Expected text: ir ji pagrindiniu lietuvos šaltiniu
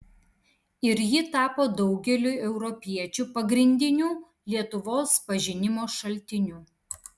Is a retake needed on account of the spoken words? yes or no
yes